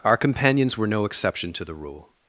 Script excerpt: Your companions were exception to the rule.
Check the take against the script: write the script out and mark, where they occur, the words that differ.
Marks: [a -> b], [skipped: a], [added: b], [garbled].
[Your -> Our] companions were [added: no] exception to the rule.